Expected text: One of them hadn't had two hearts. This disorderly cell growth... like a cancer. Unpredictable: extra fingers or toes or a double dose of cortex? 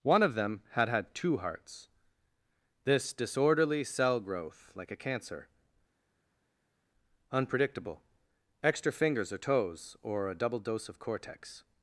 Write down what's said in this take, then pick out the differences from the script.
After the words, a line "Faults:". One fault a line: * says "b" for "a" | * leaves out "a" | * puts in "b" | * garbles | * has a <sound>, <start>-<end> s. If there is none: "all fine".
One of them had had two hearts. This disorderly cell growth... like a cancer. Unpredictable: extra fingers or toes or a double dose of cortex?
Faults:
* says "had" for "hadn't"